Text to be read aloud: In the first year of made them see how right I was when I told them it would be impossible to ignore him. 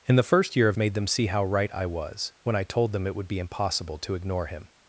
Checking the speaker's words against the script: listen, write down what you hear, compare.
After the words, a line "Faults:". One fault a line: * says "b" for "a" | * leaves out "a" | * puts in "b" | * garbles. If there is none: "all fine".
In the first year of made them see how right I was when I told them it would be impossible to ignore him.
Faults:
all fine